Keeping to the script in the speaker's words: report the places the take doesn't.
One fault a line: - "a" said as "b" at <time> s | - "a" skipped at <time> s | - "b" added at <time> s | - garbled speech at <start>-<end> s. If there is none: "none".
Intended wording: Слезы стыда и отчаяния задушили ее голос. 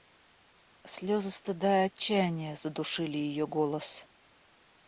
none